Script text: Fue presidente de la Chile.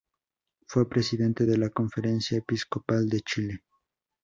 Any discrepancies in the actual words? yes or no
yes